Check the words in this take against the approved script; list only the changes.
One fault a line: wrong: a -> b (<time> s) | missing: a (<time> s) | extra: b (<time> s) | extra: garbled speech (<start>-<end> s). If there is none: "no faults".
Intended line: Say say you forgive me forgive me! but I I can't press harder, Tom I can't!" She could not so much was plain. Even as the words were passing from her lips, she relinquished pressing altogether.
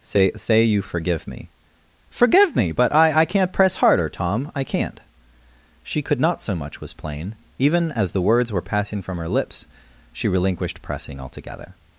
no faults